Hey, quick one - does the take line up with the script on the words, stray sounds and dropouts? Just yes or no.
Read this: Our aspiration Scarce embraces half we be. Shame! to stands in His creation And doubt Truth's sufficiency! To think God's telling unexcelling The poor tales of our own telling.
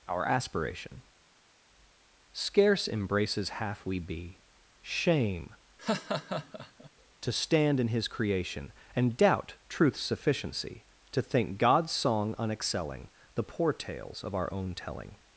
no